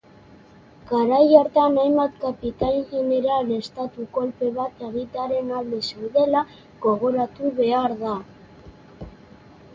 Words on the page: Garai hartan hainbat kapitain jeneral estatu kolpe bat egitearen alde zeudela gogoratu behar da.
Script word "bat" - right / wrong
right